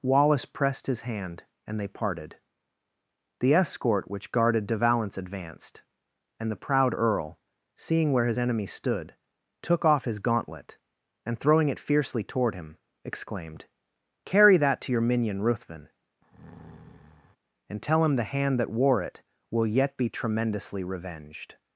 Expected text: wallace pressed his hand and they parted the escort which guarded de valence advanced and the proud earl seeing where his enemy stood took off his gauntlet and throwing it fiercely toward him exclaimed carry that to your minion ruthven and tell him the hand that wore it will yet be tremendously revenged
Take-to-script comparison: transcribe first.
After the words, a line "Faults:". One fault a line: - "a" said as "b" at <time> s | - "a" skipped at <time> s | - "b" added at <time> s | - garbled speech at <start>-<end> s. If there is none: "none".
wallace pressed his hand and they parted the escort which guarded de valence advanced and the proud earl seeing where his enemy stood took off his gauntlet and throwing it fiercely toward him exclaimed carry that to your minion ruthven and tell him the hand that wore it will yet be tremendously revenged
Faults:
none